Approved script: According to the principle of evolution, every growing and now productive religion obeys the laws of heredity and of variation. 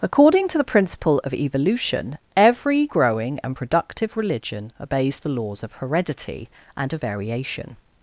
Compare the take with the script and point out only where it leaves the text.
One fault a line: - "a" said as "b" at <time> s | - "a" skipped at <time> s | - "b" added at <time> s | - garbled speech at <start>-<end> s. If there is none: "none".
- "now" skipped at 3.5 s